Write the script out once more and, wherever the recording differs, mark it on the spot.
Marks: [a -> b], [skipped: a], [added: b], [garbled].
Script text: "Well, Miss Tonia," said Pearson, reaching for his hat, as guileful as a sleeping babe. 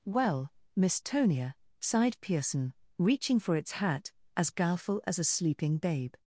"Well, Miss Tonia," [said -> sighed] Pearson, reaching for [his -> its] hat, as guileful as a sleeping babe.